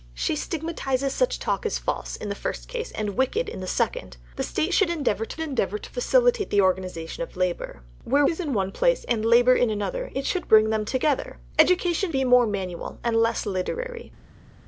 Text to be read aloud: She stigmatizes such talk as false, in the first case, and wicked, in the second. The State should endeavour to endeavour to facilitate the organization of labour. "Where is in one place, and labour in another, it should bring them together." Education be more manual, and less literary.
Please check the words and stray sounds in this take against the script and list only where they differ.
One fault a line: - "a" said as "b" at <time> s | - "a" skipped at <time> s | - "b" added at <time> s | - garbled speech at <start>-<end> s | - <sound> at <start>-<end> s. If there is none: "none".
none